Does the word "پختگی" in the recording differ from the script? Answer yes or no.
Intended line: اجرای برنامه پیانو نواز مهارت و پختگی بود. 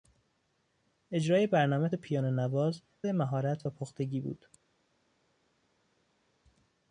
no